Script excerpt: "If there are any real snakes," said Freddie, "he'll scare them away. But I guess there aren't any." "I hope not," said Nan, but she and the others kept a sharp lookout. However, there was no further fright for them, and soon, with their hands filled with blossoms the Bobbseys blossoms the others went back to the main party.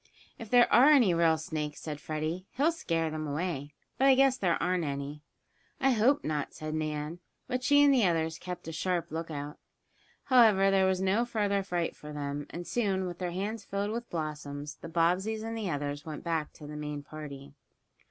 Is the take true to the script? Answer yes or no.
no